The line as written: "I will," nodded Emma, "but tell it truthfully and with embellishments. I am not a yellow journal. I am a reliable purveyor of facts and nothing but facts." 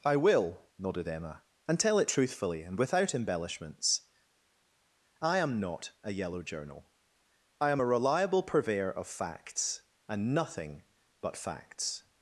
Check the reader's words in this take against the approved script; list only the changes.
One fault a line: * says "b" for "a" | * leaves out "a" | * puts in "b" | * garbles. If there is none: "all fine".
* says "and" for "but"
* says "without" for "with"